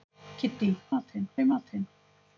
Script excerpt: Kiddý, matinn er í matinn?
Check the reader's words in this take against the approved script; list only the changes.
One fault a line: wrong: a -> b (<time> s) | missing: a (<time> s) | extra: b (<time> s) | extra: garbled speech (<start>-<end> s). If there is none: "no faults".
no faults